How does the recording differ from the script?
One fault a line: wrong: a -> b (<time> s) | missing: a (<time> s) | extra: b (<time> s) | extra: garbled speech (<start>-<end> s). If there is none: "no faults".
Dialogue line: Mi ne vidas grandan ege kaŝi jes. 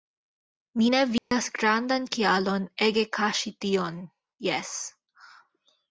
extra: kialon (2.2 s)
extra: tion (3.7 s)